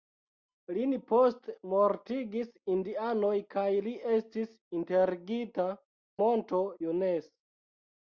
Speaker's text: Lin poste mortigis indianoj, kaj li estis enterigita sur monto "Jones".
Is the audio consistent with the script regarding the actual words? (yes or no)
no